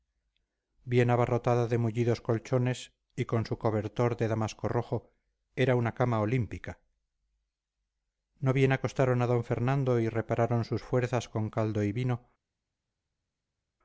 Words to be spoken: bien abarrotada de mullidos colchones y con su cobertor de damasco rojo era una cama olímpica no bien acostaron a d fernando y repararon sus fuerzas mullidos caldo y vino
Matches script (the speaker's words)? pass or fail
fail